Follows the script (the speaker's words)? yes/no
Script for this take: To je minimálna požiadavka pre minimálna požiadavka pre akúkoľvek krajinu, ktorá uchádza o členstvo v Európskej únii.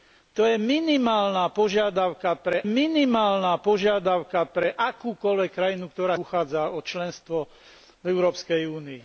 yes